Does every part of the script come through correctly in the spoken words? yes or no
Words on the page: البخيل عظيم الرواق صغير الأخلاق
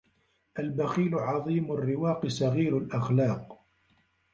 yes